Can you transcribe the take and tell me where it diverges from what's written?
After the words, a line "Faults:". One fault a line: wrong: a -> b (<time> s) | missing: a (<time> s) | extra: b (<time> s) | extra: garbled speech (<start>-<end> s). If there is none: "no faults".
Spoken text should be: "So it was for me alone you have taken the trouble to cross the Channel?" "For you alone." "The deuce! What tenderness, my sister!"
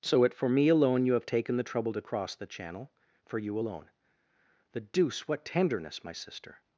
"So it for me alone you have taken the trouble to cross the Channel?" "For you alone." "The deuce! What tenderness, my sister!"
Faults:
missing: was (0.3 s)